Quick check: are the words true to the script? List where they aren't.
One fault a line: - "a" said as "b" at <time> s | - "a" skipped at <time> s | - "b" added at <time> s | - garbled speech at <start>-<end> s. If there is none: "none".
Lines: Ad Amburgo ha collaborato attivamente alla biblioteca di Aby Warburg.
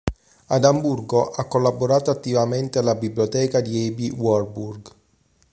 none